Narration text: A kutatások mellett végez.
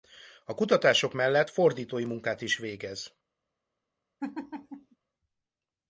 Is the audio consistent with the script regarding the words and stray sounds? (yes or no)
no